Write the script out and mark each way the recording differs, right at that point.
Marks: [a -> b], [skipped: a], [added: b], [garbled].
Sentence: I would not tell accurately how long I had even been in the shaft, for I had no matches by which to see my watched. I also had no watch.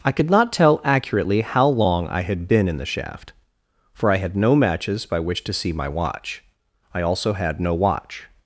I [would -> could] not tell accurately how long I had [skipped: even] been in the shaft, for I had no matches by which to see my [watched. -> watch] I also had no watch.